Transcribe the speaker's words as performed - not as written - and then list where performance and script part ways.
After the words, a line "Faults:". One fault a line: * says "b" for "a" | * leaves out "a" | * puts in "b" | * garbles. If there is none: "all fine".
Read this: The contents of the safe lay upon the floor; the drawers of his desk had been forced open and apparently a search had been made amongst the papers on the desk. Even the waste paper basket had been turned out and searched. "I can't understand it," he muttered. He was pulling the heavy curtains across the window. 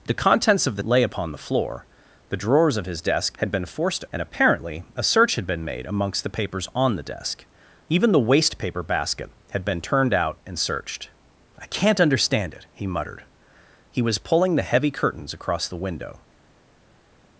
The contents of the lay upon the floor; the drawers of his desk had been forced and apparently a search had been made amongst the papers on the desk. Even the waste paper basket had been turned out and searched. "I can't understand it," he muttered. He was pulling the heavy curtains across the window.
Faults:
* leaves out "safe"
* leaves out "open"